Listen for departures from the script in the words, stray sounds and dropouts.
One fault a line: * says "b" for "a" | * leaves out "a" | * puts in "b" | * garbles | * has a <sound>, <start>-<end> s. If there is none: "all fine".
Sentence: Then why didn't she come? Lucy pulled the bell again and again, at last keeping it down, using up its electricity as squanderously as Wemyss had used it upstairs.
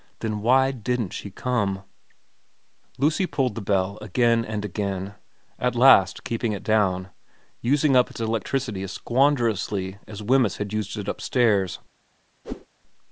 * has a whoosh, 12.4-12.7 s